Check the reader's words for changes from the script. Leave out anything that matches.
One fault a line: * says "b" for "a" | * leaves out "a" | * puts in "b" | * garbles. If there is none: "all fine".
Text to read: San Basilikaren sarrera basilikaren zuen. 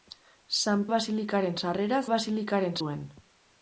all fine